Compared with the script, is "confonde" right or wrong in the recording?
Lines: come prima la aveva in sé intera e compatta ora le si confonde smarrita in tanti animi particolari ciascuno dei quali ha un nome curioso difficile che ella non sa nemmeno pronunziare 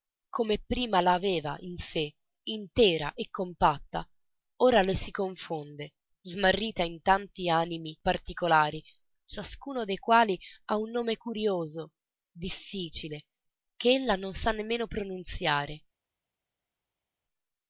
right